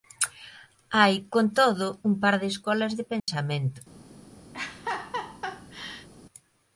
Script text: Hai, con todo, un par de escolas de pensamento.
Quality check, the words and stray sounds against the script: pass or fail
fail